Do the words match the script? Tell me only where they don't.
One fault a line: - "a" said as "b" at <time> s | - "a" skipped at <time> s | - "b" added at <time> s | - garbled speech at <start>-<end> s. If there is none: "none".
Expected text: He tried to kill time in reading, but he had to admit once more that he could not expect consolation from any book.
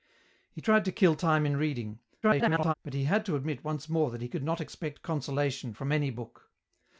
- garbled speech at 2.2-2.7 s